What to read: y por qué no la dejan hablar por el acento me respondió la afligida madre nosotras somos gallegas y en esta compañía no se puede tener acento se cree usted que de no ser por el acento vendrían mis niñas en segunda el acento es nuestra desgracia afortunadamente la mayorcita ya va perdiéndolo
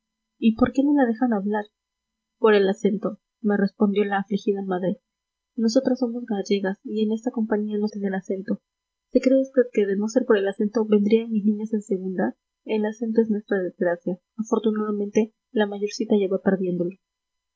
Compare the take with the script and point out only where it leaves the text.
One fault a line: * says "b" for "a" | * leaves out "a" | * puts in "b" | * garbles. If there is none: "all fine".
* leaves out "se puede"